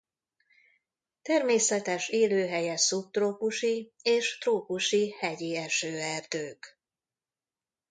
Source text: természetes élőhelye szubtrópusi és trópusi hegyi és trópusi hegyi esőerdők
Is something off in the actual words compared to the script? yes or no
yes